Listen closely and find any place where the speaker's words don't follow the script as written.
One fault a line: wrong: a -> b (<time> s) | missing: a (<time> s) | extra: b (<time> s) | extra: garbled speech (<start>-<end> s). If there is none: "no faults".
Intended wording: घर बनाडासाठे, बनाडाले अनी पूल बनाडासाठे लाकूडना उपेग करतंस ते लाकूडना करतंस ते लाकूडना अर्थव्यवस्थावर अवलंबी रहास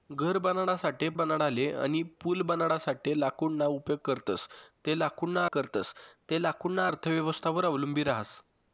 no faults